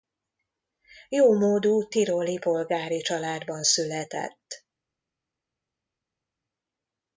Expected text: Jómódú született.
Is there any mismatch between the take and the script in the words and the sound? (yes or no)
yes